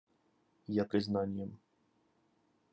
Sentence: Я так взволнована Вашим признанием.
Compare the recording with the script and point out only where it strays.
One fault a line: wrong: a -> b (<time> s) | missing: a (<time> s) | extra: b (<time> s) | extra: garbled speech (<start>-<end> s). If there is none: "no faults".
missing: так взволнована Вашим (0.8 s)